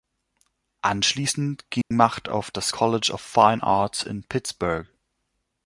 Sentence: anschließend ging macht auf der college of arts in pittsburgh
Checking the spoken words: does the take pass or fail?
fail